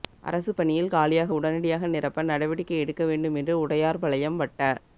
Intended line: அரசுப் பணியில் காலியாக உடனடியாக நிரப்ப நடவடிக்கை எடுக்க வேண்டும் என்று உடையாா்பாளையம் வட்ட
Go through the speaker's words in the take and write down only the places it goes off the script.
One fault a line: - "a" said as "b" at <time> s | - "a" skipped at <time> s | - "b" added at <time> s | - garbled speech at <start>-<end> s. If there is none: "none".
none